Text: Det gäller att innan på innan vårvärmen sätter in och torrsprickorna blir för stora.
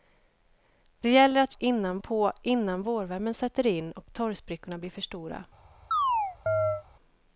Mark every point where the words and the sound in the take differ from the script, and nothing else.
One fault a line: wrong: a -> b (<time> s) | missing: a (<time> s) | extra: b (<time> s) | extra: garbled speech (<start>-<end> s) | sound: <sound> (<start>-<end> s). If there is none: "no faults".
sound: chirp (5.9-6.8 s)